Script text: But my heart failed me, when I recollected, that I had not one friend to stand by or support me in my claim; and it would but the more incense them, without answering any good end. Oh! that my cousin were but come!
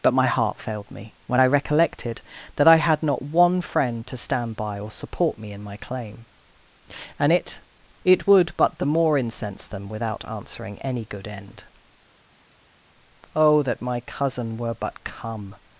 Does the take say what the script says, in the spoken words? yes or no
no